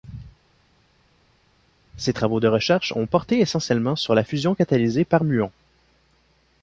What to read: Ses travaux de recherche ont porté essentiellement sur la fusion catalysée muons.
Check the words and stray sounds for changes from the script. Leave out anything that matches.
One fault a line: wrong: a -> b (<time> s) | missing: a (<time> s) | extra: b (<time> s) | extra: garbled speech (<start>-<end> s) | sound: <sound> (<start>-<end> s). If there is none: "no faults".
extra: par (5.0 s)